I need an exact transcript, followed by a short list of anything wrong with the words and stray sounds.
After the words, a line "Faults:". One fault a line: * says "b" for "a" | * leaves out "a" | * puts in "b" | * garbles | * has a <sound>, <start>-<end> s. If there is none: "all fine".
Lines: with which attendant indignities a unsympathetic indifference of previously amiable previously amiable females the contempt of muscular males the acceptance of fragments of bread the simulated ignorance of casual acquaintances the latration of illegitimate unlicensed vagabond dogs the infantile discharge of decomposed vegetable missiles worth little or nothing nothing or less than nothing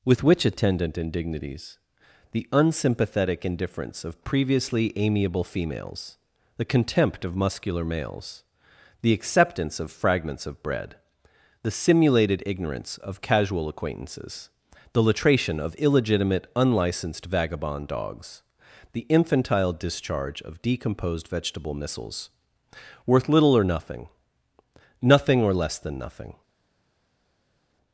with which attendant indignities the unsympathetic indifference of previously amiable females the contempt of muscular males the acceptance of fragments of bread the simulated ignorance of casual acquaintances the latration of illegitimate unlicensed vagabond dogs the infantile discharge of decomposed vegetable missiles worth little or nothing nothing or less than nothing
Faults:
* says "the" for "a"
* leaves out "previously amiable"